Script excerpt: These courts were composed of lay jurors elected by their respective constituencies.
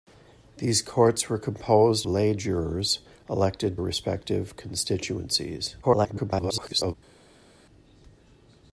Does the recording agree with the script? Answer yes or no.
no